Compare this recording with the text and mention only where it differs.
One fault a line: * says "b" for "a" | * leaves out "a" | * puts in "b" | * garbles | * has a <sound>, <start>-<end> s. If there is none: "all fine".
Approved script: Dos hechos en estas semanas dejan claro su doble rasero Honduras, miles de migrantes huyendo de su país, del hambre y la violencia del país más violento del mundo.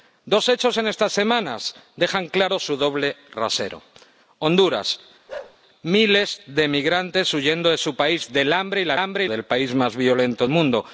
* has a bark, 5.3-5.6 s
* says "hambre" for "violencia"
* leaves out "del"